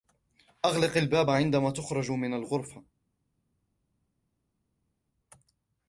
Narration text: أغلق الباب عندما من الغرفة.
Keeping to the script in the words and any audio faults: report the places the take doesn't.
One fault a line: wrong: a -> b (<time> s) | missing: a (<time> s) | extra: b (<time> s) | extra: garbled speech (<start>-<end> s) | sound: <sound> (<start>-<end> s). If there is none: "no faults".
extra: تخرج (1.7 s)